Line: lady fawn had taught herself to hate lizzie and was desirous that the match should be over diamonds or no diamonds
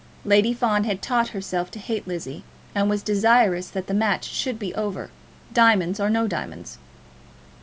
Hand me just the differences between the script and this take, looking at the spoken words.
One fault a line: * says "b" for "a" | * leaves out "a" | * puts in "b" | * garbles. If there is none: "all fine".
all fine